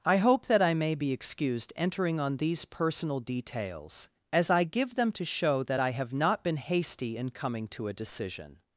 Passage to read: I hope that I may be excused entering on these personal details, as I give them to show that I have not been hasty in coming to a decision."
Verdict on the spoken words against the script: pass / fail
pass